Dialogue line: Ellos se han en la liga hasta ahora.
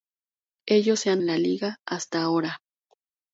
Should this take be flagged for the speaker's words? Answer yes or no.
no